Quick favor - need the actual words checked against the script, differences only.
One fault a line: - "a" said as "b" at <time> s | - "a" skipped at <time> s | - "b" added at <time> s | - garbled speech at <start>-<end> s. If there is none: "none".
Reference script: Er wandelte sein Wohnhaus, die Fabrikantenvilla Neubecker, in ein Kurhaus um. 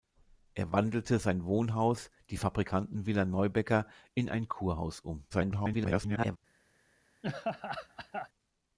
- garbled speech at 5.3-6.4 s